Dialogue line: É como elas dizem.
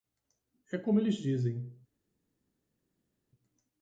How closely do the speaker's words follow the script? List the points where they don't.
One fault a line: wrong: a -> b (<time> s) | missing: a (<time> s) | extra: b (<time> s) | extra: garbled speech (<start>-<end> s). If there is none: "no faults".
wrong: elas -> eles (1.0 s)